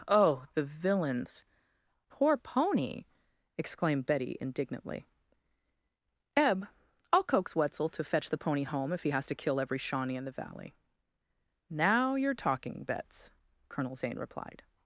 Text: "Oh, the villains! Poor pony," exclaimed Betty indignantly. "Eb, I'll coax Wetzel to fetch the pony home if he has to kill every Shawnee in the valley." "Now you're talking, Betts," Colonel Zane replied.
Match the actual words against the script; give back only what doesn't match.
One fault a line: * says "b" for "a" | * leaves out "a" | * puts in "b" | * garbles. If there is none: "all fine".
all fine